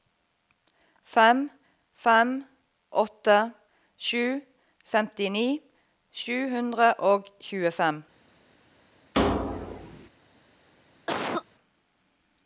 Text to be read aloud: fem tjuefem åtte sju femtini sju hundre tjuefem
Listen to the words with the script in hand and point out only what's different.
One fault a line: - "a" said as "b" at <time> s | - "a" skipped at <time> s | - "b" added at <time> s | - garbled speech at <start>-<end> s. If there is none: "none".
- "tjuefem" said as "fem" at 2.0 s
- "og" added at 7.1 s